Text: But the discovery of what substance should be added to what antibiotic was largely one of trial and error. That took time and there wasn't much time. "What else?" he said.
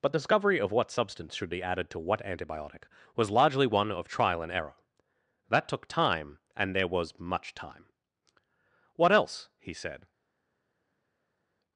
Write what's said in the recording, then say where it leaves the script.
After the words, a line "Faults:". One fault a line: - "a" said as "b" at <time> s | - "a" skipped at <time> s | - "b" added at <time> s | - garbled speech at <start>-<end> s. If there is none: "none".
But discovery of what substance should be added to what antibiotic was largely one of trial and error. That took time and there was much time. "What else?" he said.
Faults:
- "the" skipped at 0.1 s
- "wasn't" said as "was" at 6.9 s